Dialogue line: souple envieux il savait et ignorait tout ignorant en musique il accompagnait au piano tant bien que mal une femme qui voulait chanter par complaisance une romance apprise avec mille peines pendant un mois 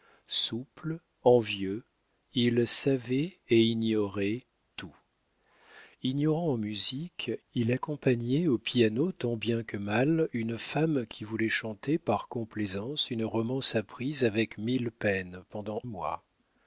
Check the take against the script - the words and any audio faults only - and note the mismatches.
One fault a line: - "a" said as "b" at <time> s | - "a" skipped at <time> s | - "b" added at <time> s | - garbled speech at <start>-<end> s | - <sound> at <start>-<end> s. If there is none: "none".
- "un" skipped at 15.8 s